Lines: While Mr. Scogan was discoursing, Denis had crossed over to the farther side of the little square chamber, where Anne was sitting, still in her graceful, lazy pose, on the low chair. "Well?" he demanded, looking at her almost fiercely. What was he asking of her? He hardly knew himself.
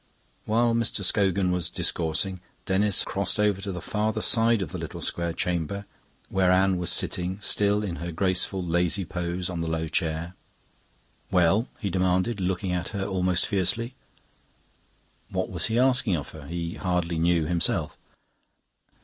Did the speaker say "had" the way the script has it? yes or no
no